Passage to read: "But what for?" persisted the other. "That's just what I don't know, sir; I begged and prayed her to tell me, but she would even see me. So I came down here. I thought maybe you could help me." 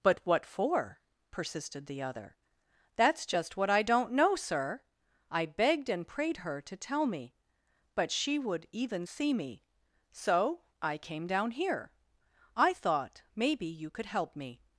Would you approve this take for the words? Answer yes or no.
yes